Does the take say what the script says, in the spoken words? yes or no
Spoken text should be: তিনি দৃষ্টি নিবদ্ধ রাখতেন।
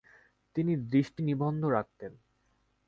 yes